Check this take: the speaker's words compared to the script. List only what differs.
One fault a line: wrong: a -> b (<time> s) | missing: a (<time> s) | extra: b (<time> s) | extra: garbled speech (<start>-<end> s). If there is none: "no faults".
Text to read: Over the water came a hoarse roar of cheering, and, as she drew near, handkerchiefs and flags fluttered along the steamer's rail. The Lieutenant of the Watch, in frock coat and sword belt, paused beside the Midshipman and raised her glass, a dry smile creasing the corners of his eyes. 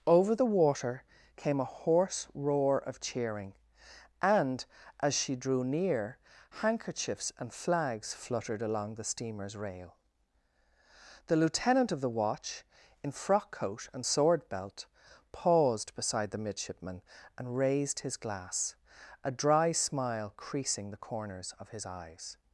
wrong: her -> his (18.0 s)